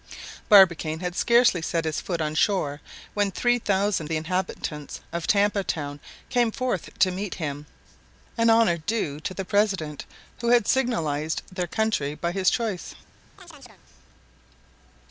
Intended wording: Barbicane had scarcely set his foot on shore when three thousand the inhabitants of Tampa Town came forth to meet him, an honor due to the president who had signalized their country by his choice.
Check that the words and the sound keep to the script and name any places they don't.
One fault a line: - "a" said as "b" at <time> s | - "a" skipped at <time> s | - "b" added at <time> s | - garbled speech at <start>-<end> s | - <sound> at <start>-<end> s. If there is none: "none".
- chirp at 13.4-13.8 s